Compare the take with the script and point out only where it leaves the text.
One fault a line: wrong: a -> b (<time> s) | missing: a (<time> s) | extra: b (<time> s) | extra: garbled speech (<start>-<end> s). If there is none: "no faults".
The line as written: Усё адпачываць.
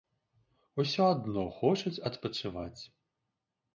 extra: адно хочуць (1.1 s)